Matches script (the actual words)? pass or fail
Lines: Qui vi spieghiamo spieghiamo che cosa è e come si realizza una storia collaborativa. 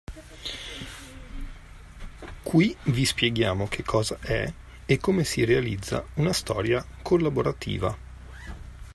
fail